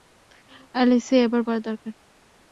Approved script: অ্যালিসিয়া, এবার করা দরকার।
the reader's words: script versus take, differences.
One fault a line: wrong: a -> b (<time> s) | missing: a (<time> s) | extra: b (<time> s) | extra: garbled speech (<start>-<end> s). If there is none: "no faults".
no faults